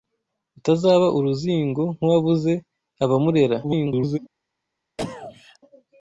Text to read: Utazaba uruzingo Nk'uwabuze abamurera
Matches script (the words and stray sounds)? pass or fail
fail